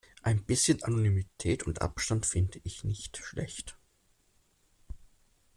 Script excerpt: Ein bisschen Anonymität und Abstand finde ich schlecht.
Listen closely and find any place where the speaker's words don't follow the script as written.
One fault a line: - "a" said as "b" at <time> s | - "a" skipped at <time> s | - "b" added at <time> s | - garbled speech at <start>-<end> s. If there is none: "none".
- "nicht" added at 2.8 s